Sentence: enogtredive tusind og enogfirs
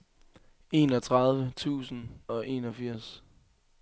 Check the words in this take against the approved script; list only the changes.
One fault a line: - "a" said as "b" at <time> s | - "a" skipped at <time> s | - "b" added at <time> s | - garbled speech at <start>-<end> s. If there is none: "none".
none